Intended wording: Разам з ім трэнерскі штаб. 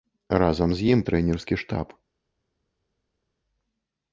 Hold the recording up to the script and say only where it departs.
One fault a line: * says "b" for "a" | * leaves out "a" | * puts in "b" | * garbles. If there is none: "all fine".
all fine